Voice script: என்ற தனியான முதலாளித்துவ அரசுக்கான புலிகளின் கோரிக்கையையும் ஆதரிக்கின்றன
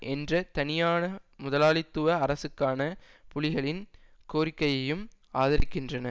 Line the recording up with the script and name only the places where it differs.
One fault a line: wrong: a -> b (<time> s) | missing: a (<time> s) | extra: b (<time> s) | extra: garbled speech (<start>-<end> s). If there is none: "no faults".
no faults